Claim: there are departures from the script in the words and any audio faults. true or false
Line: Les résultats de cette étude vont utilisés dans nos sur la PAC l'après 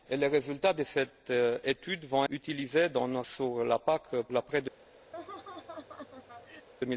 true